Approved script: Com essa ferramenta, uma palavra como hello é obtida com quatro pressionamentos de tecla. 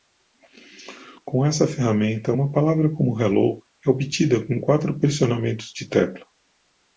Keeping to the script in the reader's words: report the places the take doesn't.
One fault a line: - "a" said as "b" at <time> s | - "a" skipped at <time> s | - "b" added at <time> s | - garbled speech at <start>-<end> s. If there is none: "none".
none